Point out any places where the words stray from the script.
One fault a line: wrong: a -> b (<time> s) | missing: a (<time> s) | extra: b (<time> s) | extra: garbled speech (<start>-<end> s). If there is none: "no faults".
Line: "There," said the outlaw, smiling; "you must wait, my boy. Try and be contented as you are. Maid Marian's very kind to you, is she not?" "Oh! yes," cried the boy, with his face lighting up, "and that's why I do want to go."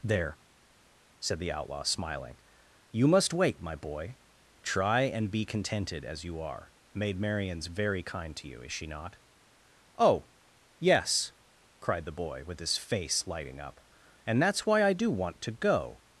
no faults